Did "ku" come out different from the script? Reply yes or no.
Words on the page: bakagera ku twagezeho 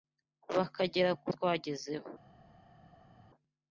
no